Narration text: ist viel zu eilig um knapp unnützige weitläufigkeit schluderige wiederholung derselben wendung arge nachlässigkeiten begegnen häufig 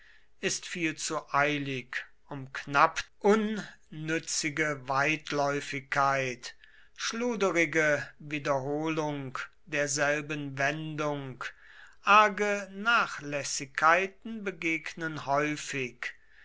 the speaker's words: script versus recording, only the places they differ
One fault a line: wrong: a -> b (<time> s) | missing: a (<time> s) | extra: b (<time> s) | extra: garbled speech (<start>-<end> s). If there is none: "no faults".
no faults